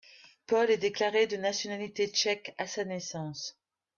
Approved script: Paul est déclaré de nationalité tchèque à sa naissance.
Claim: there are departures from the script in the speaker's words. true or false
false